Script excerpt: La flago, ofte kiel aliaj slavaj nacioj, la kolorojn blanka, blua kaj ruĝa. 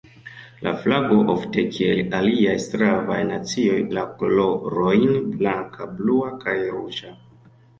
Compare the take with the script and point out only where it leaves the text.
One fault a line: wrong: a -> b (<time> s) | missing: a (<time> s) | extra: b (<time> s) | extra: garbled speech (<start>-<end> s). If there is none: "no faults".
no faults